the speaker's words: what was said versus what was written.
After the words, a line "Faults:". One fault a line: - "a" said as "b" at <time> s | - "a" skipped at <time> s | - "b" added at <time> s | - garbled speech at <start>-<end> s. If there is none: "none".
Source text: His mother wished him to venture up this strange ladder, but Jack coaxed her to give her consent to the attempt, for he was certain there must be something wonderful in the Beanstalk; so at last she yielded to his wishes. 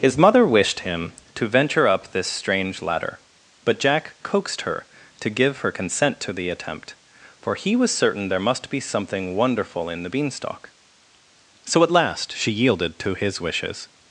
His mother wished him to venture up this strange ladder, but Jack coaxed her to give her consent to the attempt, for he was certain there must be something wonderful in the Beanstalk; so at last she yielded to his wishes.
Faults:
none